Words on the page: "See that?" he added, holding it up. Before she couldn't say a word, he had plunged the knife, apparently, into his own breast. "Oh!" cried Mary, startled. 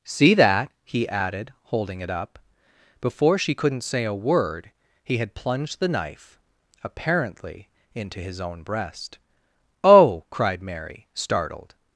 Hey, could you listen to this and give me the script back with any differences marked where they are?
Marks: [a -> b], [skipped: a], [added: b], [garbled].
"See that?" he added, holding it up. Before she couldn't say a word, he had plunged the knife, apparently, into his own breast. "Oh!" cried Mary, startled.